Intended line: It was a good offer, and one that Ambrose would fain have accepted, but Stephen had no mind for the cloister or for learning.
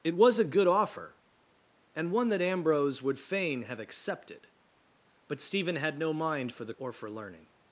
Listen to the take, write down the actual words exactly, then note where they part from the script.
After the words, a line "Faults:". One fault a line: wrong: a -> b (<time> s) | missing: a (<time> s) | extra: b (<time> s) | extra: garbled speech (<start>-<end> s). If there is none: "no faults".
It was a good offer, and one that Ambrose would fain have accepted, but Stephen had no mind for the or for learning.
Faults:
missing: cloister (6.7 s)